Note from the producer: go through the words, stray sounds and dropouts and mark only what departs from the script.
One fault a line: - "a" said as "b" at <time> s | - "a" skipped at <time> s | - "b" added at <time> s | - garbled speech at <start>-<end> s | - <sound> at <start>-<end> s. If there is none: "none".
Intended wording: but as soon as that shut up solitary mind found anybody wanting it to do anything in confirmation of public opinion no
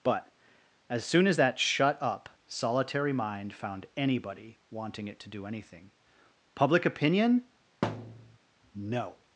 - "in confirmation of" skipped at 5.9 s
- thud at 7.8-8.4 s